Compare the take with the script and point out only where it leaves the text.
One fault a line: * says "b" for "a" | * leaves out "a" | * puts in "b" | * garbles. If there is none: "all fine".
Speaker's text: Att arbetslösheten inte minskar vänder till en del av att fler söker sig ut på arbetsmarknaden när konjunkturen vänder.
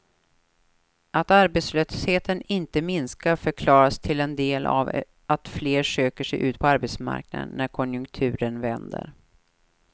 * says "förklaras" for "vänder"